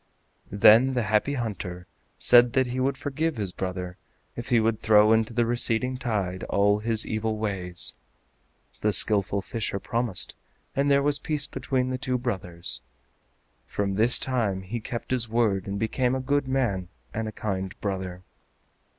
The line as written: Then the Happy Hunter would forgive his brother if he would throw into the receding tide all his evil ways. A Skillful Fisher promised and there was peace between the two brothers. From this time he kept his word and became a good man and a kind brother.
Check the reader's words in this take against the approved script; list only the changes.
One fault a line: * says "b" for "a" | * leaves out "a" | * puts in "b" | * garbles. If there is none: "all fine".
* puts in "said that he"
* says "The" for "A"